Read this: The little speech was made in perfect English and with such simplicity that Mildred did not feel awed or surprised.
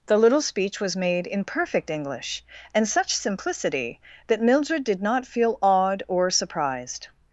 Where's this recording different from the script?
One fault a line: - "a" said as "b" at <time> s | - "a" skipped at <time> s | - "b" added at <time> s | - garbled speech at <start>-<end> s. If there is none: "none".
- "with" skipped at 2.9 s